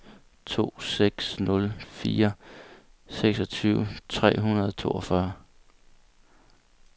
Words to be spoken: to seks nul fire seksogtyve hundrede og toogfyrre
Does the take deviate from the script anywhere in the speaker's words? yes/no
yes